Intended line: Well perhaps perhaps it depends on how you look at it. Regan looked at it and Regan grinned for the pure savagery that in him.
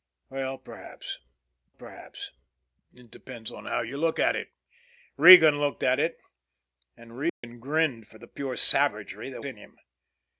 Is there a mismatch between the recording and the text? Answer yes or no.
no